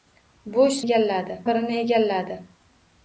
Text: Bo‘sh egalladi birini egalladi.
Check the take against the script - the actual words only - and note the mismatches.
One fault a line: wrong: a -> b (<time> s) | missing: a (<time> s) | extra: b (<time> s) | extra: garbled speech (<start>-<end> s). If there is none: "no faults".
no faults